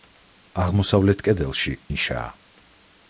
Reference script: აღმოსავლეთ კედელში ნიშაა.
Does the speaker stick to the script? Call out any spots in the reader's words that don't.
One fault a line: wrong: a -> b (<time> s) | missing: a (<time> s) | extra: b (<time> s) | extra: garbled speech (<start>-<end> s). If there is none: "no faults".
no faults